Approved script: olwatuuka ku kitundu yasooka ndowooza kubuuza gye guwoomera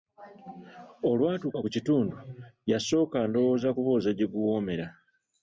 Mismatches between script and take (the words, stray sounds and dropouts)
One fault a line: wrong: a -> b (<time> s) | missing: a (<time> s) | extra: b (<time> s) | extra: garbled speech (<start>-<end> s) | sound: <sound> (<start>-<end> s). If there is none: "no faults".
no faults